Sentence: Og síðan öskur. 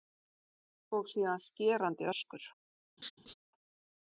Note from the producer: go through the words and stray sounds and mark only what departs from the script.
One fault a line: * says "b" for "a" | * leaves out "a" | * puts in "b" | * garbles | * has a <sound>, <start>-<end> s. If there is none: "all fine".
* puts in "skerandi"
* has a laugh, 3.0-3.3 s